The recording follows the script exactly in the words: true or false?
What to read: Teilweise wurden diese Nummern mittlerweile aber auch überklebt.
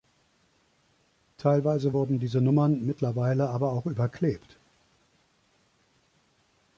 true